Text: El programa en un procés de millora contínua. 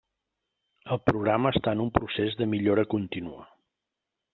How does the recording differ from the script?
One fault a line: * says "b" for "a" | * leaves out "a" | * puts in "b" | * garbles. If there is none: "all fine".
* puts in "està"